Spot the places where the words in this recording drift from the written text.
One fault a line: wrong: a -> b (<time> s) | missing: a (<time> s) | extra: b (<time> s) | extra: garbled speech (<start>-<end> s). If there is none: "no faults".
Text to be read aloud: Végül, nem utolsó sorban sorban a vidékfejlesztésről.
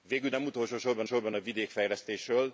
no faults